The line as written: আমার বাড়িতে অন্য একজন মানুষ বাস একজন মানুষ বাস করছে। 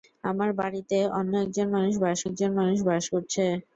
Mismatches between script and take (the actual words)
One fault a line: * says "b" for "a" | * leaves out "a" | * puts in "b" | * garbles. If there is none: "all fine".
all fine